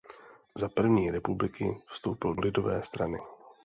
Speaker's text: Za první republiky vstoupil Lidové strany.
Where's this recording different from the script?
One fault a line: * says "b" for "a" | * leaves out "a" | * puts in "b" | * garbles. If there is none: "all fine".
all fine